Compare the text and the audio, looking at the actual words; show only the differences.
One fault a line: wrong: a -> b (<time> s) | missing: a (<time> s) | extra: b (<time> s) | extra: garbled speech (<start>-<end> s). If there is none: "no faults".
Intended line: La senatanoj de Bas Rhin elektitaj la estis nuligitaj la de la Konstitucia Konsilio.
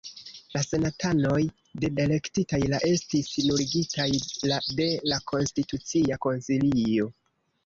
missing: Bas Rhin (1.9 s)